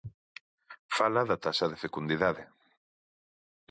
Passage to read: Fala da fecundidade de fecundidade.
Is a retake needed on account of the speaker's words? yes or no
yes